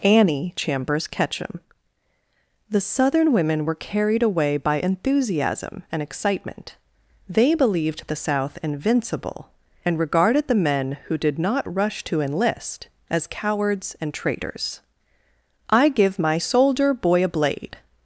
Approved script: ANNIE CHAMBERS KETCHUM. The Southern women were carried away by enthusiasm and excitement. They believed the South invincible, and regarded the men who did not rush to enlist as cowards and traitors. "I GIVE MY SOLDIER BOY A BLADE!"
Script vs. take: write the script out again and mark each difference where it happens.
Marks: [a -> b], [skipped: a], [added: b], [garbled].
ANNIE CHAMBERS KETCHUM. The Southern women were carried away by enthusiasm and excitement. They believed the South invincible, and regarded the men who did not rush to enlist as cowards and traitors. "I GIVE MY SOLDIER BOY A BLADE!"